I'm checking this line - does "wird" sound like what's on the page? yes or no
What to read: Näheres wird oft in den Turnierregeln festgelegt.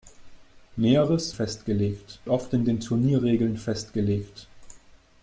no